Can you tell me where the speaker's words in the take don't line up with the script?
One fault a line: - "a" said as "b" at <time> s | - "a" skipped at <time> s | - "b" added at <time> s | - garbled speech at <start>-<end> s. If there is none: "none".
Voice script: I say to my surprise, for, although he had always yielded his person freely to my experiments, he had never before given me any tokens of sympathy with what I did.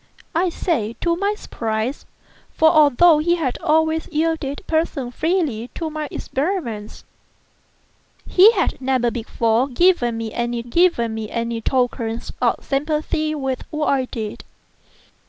- "his" skipped at 4.6 s
- "given me any" added at 10.6 s